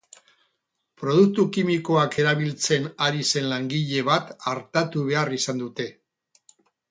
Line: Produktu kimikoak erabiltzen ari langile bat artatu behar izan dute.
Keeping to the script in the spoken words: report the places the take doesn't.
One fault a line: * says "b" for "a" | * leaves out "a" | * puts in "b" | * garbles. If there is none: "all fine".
* puts in "zen"